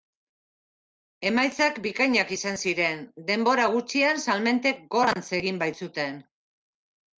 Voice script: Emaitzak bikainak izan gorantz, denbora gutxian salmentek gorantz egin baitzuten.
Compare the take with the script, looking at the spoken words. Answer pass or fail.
fail